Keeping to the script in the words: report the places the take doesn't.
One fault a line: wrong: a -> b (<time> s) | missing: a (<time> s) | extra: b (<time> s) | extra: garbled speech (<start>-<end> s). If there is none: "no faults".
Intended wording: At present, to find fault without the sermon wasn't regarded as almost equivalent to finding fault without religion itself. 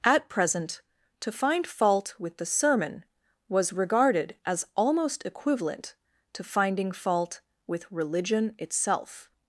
wrong: without -> with (2.2 s)
wrong: wasn't -> was (3.5 s)
wrong: without -> with (7.7 s)